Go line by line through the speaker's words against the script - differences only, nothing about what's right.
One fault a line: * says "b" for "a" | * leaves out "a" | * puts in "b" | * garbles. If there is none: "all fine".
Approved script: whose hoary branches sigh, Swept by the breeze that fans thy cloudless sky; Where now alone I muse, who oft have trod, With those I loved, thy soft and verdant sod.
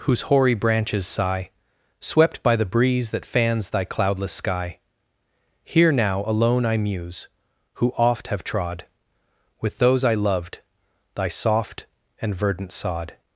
* says "Here" for "Where"